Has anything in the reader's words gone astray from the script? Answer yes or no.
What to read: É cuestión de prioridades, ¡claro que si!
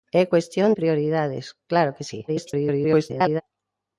yes